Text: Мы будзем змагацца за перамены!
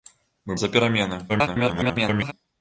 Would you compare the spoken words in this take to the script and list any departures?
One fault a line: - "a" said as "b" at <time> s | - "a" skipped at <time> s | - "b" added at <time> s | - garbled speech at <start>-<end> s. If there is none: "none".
- "будзем змагацца" skipped at 0.6 s
- garbled speech at 1.3-2.3 s